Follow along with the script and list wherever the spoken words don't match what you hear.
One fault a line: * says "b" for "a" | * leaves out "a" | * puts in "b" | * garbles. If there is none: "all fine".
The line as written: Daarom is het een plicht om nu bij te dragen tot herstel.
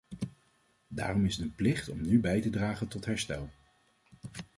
all fine